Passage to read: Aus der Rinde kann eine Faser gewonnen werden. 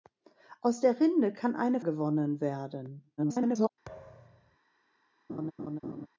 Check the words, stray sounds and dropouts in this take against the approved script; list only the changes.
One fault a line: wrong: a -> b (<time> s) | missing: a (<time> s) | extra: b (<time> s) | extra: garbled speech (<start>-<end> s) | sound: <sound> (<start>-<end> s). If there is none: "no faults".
missing: Faser (1.8 s)
extra: garbled speech (3.2-3.7 s)
sound: thud (3.9-4.6 s)
sound: laugh (5.3-6.1 s)